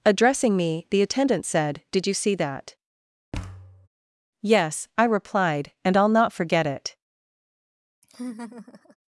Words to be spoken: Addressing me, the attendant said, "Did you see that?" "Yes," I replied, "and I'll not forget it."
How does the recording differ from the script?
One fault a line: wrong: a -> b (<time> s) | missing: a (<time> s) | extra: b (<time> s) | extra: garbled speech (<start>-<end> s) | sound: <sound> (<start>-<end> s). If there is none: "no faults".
sound: thud (3.3-3.9 s)
sound: laugh (8.0-9.0 s)